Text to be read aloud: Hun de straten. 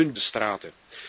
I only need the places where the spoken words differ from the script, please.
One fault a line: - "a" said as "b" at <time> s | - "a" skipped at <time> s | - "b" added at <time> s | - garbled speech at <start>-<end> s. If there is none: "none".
none